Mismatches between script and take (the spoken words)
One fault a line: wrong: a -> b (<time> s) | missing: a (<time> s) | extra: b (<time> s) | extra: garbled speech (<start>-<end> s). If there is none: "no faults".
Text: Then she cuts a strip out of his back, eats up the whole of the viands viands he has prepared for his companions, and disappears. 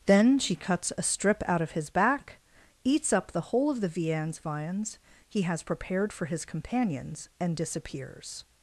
no faults